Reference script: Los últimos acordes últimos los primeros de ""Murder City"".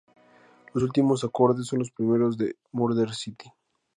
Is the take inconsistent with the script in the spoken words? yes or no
yes